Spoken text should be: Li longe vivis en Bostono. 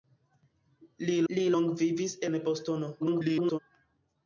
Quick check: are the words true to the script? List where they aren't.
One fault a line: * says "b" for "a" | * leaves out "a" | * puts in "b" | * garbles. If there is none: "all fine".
* puts in "li"
* garbles